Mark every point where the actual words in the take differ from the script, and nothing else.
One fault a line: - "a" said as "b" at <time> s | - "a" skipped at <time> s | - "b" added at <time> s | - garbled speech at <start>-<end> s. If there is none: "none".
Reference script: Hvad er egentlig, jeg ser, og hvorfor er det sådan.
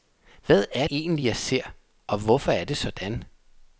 none